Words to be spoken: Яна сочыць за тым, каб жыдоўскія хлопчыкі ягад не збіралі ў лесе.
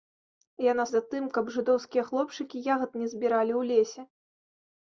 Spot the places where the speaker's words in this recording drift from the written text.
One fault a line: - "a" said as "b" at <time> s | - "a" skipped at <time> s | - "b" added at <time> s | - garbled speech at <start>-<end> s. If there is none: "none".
- "сочыць" skipped at 0.8 s